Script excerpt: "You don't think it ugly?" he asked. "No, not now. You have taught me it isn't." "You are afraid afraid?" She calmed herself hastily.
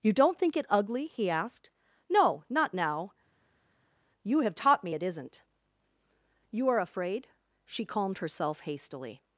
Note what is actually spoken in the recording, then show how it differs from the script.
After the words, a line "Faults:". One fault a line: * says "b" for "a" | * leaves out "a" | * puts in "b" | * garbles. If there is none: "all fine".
"You don't think it ugly?" he asked. "No, not now. You have taught me it isn't." "You are afraid?" She calmed herself hastily.
Faults:
* leaves out "afraid"